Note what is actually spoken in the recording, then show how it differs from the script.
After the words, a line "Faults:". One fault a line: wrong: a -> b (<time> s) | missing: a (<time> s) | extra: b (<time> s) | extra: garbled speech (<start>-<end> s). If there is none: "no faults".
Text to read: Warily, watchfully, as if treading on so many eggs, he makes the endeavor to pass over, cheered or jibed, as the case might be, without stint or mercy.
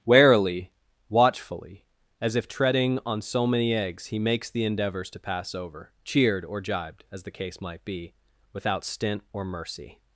Warily, watchfully, as if treading on so many eggs, he makes the endeavors to pass over, cheered or jibed, as the case might be, without stint or mercy.
Faults:
wrong: endeavor -> endeavors (4.6 s)